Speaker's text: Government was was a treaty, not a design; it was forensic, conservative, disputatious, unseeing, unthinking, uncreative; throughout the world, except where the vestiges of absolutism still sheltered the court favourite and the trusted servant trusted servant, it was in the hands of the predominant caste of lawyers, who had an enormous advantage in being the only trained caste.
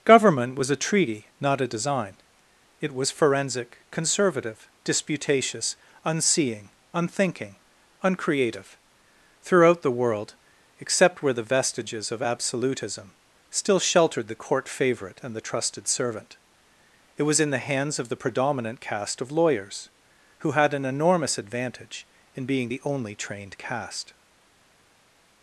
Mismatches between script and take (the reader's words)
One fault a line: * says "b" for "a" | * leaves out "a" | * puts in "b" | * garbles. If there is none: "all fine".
* leaves out "was"
* leaves out "trusted servant"